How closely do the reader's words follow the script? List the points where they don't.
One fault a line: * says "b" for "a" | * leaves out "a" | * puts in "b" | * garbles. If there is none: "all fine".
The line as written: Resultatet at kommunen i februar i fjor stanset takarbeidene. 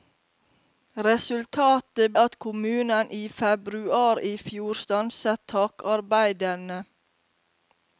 all fine